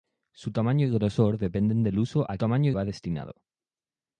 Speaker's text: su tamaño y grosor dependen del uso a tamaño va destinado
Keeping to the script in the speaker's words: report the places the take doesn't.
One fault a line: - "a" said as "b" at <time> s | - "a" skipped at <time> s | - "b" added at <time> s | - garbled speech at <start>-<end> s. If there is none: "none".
none